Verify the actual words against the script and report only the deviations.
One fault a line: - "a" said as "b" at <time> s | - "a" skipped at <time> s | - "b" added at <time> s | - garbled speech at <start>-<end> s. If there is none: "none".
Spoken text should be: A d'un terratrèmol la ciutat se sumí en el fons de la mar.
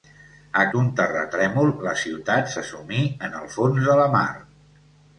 none